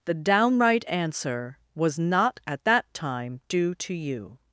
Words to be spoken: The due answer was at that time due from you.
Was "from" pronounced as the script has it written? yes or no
no